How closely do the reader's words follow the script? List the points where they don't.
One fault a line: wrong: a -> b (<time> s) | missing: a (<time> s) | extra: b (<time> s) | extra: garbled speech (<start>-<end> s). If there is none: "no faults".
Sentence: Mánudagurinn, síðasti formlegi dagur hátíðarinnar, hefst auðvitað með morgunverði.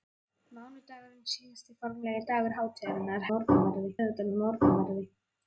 wrong: hefst -> morgunverði (3.3 s)